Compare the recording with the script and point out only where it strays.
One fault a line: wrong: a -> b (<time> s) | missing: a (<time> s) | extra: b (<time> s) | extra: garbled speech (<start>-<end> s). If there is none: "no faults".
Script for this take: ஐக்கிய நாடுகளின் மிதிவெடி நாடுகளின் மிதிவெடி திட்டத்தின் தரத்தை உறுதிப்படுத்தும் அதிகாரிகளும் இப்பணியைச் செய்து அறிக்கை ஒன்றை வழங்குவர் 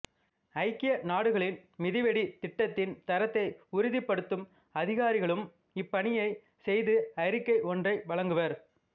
missing: நாடுகளின் மிதிவெடி (2.2 s)